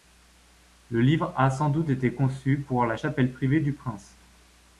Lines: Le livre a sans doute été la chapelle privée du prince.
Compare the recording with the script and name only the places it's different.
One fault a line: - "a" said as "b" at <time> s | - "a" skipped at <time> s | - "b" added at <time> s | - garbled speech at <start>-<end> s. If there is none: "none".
- "conçu pour" added at 2.1 s